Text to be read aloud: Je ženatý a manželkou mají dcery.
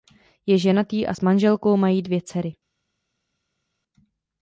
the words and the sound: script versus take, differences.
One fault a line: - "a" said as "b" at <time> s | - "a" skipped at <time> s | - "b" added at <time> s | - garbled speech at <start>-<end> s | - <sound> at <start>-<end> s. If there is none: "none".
- "s" added at 1.1 s
- "dvě" added at 2.0 s